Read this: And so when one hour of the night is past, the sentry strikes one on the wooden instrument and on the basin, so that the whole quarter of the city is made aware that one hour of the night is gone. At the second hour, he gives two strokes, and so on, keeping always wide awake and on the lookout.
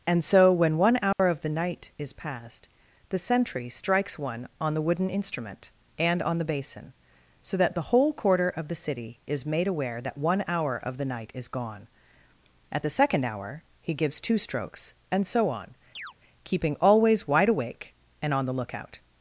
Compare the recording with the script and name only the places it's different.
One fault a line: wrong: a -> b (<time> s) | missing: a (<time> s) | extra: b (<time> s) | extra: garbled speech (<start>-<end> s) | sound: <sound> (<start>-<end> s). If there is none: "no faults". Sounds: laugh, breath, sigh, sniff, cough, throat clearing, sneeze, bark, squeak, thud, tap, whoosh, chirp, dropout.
sound: dropout (1.1-1.2 s)
sound: chirp (15.9-16.1 s)